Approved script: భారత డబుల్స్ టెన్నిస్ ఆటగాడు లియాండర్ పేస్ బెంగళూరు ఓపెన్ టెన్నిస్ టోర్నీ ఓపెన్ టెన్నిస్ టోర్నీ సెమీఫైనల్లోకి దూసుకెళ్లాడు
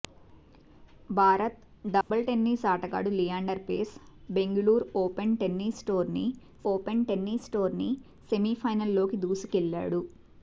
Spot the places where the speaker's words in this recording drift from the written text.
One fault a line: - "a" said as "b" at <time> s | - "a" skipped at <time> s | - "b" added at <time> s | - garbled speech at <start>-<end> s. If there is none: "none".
none